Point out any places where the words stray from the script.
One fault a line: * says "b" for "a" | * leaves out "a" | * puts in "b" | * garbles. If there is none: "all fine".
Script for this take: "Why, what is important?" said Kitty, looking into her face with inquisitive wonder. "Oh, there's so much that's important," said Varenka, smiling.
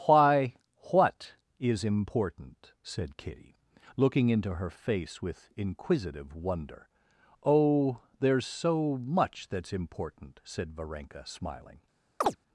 all fine